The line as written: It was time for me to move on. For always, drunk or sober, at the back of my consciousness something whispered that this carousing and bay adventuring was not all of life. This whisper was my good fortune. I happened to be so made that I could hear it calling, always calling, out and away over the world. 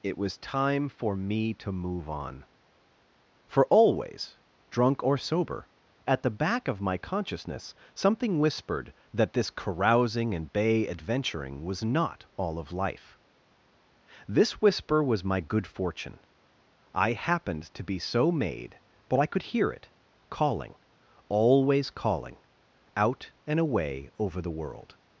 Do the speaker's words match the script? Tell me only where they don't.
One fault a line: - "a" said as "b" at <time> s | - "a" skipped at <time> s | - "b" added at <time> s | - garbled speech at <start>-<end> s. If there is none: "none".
- "that" said as "but" at 19.1 s